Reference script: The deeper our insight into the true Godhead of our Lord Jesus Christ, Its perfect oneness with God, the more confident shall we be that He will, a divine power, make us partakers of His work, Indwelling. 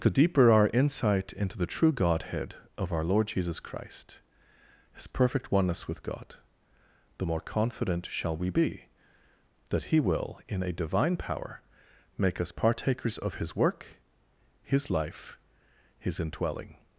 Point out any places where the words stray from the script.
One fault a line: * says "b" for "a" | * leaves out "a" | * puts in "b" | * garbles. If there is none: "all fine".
* says "His" for "Its"
* puts in "in"
* puts in "His life His"